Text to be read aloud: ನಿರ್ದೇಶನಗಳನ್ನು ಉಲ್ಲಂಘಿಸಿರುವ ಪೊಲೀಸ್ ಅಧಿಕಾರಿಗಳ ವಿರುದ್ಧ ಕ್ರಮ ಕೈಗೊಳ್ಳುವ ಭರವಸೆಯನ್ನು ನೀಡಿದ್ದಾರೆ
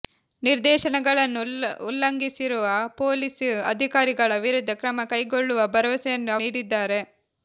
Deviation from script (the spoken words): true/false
false